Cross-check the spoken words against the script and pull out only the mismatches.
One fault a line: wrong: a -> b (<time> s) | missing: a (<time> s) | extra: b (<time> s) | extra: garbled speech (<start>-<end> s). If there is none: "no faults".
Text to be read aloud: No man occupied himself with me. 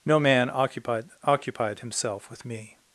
extra: occupied (1.2 s)